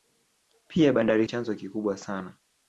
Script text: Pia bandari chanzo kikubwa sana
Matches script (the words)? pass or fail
pass